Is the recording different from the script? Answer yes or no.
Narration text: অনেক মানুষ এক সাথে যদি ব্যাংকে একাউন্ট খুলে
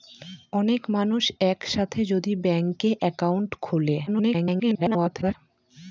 yes